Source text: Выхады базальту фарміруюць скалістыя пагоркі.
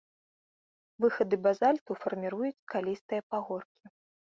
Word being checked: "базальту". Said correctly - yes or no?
yes